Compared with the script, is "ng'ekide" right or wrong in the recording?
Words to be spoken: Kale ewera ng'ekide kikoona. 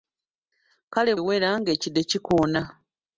right